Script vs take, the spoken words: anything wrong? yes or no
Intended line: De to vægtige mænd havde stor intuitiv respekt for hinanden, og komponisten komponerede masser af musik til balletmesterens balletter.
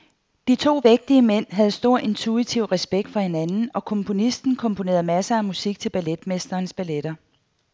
no